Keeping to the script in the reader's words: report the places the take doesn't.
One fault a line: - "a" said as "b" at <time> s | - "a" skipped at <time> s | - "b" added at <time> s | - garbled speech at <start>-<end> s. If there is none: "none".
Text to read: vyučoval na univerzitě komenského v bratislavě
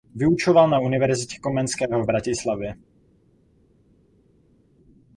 none